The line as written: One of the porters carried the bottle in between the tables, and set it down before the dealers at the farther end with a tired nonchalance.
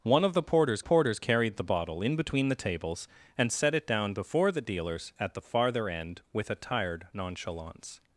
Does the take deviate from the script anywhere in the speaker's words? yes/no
yes